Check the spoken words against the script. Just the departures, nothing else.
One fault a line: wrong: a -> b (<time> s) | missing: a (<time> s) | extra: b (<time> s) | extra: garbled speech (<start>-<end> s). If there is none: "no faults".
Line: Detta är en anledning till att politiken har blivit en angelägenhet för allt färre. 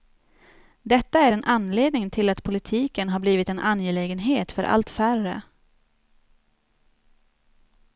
no faults